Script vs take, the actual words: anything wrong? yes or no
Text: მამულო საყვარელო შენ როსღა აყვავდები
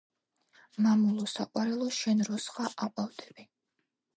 no